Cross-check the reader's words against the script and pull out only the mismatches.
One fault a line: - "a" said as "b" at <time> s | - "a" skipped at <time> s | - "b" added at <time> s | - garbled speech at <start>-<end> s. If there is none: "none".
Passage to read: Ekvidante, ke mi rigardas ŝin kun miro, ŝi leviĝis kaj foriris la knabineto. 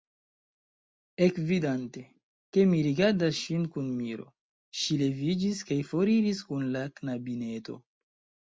- "kun" added at 6.5 s